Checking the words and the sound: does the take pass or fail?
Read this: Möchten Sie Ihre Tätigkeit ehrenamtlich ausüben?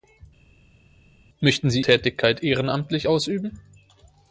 fail